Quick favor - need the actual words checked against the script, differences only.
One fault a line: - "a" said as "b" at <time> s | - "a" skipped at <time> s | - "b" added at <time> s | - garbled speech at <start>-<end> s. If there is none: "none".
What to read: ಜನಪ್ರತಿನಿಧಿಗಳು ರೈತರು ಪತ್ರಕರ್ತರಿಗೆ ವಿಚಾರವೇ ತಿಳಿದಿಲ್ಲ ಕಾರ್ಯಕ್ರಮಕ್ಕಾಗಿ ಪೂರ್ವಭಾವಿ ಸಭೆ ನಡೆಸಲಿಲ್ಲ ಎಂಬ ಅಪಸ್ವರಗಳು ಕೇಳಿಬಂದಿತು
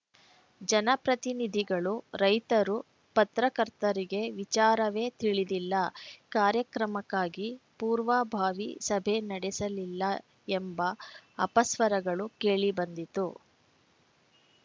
none